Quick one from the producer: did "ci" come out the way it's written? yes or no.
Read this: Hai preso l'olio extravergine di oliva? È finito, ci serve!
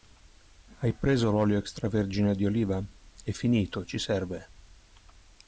yes